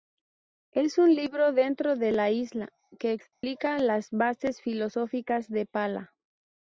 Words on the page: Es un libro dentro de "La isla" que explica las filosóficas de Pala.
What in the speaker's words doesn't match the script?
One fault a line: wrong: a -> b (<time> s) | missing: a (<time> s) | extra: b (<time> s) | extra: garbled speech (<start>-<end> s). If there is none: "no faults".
extra: bases (4.1 s)